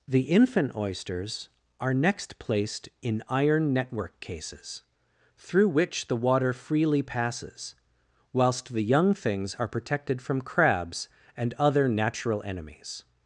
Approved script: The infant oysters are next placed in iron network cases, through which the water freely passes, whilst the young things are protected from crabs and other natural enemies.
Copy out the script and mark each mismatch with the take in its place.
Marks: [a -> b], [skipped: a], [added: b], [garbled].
The infant oysters are next placed in iron network cases, through which the water freely passes, whilst the young things are protected from crabs and other natural enemies.